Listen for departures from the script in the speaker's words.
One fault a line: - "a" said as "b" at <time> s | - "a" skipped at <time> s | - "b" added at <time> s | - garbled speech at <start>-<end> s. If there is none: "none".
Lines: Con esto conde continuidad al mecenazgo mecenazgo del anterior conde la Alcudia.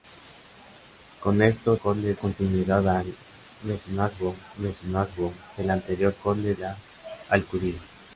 none